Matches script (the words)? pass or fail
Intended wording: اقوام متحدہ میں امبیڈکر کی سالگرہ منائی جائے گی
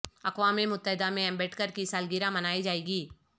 pass